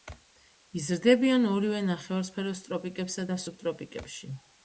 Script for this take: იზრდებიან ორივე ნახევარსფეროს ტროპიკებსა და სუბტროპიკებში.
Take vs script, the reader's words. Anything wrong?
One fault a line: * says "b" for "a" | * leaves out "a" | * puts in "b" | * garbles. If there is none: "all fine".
all fine